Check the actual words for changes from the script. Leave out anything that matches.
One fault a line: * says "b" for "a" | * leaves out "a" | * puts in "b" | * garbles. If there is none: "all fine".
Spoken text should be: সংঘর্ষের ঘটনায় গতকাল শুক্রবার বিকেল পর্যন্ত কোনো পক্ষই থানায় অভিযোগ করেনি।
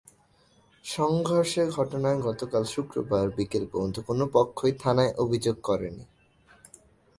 all fine